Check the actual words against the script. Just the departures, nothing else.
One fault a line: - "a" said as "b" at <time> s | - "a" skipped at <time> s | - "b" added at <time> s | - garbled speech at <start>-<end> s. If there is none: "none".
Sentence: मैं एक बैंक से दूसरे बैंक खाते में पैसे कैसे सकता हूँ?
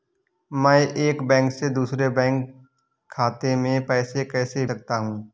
none